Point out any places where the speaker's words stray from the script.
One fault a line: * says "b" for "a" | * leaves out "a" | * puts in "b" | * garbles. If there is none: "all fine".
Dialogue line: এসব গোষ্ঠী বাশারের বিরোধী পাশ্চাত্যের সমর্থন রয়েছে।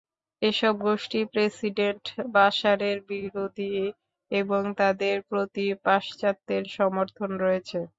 * puts in "প্রেসিডেন্ট"
* puts in "এবং তাদের প্রতি"